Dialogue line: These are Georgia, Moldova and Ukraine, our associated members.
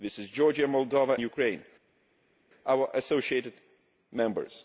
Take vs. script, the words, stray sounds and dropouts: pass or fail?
fail